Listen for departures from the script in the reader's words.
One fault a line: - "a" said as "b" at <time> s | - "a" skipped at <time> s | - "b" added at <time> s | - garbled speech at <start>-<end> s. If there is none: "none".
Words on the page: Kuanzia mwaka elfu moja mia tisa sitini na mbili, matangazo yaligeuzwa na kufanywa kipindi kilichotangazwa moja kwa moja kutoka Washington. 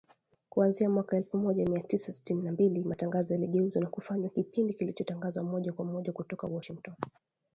none